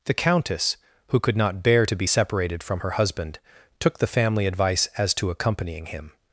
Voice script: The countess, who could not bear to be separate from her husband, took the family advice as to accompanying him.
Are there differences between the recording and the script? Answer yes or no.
yes